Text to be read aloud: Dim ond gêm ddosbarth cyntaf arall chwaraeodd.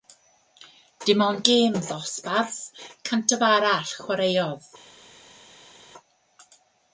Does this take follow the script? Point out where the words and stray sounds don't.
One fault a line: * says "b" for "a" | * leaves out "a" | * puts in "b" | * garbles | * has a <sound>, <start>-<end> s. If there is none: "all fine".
all fine